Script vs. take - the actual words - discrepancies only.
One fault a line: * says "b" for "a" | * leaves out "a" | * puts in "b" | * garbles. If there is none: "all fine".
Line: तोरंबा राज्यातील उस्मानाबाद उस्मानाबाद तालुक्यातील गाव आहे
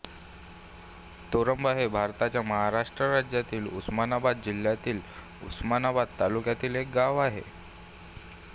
* puts in "हे भारताच्या महाराष्ट्र"
* puts in "जिल्ह्यातील"
* puts in "एक"